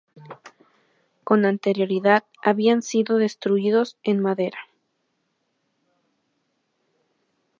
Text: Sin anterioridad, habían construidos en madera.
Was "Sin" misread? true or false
true